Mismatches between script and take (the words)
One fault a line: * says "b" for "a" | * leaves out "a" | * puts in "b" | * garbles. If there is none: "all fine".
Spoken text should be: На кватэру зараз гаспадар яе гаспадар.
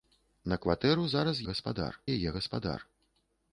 all fine